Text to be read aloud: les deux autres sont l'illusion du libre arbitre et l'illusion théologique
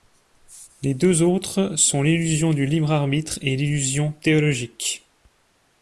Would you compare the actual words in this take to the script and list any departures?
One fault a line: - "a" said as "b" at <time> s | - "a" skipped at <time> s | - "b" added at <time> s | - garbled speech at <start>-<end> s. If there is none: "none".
none